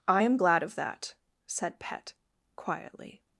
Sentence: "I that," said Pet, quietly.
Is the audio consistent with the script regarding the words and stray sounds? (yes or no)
no